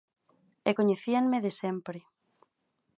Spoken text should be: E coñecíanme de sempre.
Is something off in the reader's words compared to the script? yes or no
no